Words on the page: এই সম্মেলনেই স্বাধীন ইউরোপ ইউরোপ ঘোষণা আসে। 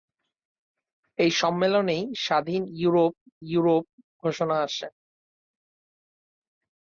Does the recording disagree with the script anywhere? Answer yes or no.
no